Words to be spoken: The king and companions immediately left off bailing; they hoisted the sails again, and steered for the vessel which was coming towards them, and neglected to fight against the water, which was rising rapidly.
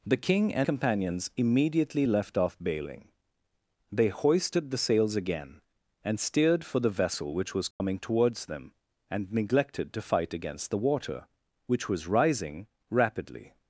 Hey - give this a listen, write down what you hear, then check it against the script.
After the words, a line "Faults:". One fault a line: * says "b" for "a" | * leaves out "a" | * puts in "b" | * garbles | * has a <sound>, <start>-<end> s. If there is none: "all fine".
The king and companions immediately left off bailing; they hoisted the sails again, and steered for the vessel which was coming towards them, and neglected to fight against the water, which was rising rapidly.
Faults:
* has a dropout, 7.7-7.8 s